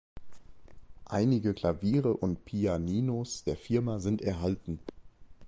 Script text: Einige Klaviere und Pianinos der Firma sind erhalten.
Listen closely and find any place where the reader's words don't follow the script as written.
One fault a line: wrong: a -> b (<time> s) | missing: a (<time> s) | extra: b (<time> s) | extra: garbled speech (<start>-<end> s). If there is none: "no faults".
no faults